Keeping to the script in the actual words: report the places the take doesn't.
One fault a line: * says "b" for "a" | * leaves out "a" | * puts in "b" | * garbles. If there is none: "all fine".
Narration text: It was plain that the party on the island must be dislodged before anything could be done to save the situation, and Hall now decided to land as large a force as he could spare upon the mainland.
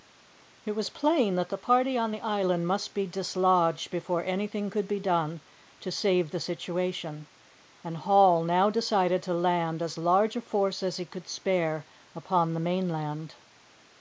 all fine